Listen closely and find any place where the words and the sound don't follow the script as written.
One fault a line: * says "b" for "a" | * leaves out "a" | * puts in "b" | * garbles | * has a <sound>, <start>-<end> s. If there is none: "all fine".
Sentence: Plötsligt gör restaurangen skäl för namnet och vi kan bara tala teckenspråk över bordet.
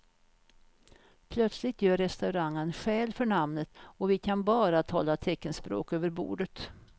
all fine